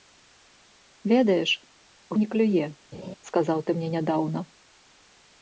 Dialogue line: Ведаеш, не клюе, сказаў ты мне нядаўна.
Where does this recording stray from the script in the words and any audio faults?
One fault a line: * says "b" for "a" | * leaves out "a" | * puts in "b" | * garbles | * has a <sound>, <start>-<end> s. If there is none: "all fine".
* has a laugh, 2.9-3.1 s